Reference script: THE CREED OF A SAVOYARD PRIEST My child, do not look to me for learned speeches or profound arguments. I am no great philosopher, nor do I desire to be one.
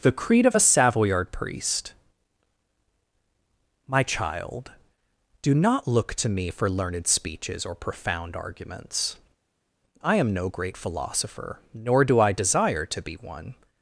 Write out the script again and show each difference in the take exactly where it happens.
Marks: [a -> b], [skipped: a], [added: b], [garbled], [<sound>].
THE CREED OF A SAVOYARD PRIEST My child, do not look to me for learned speeches or profound arguments. I am no great philosopher, nor do I desire to be one.